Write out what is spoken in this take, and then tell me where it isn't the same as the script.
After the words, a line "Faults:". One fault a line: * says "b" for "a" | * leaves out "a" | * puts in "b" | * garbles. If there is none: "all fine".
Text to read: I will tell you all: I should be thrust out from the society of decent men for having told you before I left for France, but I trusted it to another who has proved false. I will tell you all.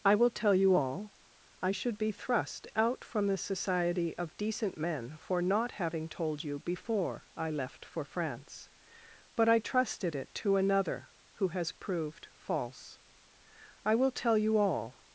I will tell you all: I should be thrust out from the society of decent men for not having told you before I left for France, but I trusted it to another who has proved false. I will tell you all.
Faults:
* puts in "not"